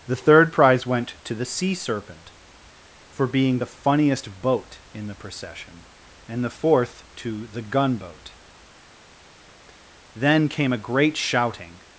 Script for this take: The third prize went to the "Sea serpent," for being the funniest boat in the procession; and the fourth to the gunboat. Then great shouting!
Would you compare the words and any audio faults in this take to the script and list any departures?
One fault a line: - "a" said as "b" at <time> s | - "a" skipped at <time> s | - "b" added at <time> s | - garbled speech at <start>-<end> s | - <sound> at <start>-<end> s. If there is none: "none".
- "came a" added at 10.5 s